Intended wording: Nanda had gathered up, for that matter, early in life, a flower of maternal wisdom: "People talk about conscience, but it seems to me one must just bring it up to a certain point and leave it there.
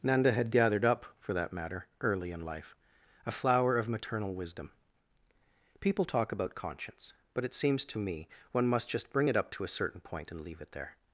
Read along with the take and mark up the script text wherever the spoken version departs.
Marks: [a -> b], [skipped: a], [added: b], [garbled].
Nanda had gathered up, for that matter, early in life, a flower of maternal wisdom: "People talk about conscience, but it seems to me one must just bring it up to a certain point and leave it there.